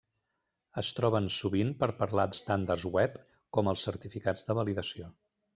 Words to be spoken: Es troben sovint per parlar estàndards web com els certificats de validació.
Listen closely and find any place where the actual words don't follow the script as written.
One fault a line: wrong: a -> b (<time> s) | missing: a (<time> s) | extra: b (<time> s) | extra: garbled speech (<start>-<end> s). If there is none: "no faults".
no faults